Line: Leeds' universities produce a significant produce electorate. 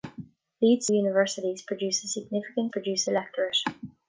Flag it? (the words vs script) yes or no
no